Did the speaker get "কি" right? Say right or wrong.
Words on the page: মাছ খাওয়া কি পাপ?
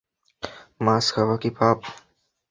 right